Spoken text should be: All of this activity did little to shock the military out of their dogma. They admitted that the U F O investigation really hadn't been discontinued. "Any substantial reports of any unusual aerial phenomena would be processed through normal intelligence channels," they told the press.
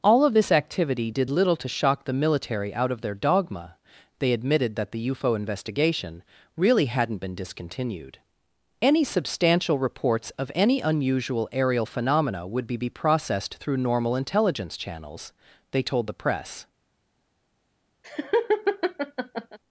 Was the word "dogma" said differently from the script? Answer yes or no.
no